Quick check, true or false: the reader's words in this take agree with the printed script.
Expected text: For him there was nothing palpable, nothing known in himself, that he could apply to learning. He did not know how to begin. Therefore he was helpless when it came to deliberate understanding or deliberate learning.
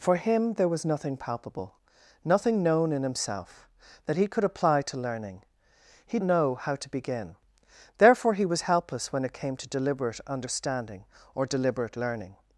false